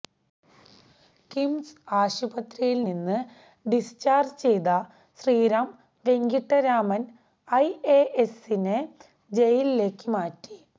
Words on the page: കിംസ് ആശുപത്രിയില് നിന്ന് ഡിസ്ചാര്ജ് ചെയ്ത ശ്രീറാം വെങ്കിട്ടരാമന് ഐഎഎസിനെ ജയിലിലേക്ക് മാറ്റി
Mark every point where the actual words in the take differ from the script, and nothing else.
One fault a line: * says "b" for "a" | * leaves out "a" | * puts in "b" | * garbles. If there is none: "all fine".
all fine